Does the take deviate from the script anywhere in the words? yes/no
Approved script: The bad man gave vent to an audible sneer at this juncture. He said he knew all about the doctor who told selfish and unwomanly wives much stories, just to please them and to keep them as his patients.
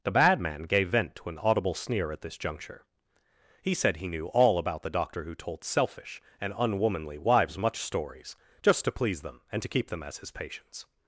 no